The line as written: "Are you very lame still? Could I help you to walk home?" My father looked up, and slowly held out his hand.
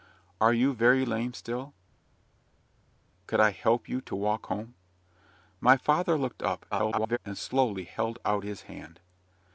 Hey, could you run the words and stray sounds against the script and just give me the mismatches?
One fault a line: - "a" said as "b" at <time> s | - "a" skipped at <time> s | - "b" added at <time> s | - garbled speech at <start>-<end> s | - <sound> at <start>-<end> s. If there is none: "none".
- garbled speech at 6.7-7.2 s